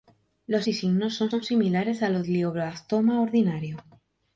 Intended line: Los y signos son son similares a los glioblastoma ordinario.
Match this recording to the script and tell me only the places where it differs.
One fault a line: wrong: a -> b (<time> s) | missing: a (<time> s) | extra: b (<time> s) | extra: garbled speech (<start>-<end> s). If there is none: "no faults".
no faults